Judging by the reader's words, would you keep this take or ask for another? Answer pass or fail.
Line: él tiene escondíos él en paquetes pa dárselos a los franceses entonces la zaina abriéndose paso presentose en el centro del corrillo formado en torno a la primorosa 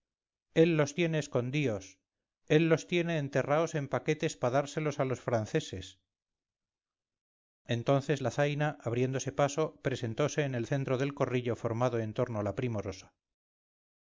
fail